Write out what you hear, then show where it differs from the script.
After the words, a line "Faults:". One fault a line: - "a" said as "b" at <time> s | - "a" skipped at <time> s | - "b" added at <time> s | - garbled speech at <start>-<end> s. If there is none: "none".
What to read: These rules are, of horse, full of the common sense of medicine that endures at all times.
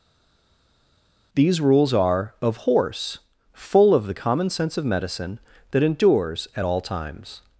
These rules are, of horse, full of the common sense of medicine that endures at all times.
Faults:
none